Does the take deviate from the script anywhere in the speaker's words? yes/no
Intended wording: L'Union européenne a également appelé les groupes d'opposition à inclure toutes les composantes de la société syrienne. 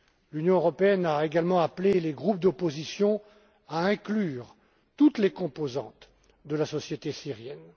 no